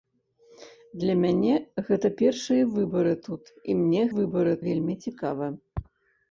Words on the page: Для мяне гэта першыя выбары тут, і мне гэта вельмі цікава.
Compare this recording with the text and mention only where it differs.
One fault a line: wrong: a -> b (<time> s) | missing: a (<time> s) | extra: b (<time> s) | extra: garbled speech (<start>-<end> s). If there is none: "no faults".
wrong: гэта -> выбары (4.2 s)